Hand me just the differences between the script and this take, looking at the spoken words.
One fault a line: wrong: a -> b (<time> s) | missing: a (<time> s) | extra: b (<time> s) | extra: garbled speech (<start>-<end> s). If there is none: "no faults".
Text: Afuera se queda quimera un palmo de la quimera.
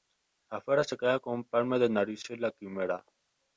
wrong: quimera -> con (1.2 s)
extra: narices (1.9 s)